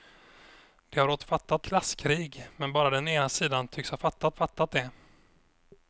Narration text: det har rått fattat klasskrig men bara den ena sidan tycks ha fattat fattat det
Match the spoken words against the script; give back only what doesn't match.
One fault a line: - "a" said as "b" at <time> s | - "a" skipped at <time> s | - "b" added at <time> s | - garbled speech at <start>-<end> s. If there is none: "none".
none